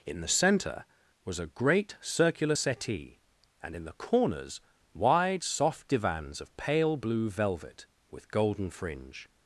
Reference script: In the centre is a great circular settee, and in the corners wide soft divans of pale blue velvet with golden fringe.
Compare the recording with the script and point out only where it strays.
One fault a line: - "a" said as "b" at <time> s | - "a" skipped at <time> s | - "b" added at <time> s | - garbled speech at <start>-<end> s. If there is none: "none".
- "is" said as "was" at 1.2 s